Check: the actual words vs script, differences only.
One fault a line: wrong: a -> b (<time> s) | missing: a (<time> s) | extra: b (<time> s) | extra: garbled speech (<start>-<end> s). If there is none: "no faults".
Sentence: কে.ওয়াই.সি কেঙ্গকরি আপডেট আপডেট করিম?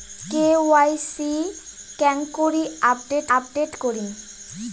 no faults